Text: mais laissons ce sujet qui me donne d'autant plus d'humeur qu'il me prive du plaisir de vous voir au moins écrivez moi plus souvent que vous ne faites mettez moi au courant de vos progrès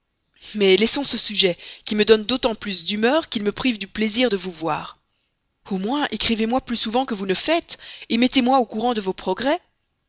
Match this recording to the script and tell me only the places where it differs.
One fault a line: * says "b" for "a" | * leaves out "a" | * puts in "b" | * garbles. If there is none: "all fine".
all fine